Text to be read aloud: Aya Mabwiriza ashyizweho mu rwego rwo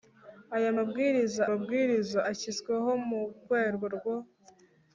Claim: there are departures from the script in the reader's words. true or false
true